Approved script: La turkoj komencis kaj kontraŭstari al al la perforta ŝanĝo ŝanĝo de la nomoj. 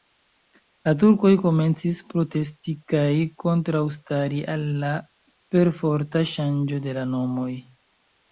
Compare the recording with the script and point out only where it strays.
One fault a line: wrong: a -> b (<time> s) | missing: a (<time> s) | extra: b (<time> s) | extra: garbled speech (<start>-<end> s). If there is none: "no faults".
extra: protesti (2.1 s)
missing: al (4.7 s)
missing: ŝanĝo (6.8 s)